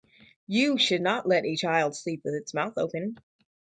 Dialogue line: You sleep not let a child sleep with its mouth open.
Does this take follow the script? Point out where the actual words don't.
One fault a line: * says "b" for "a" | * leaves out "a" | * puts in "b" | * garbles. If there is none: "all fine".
* says "should" for "sleep"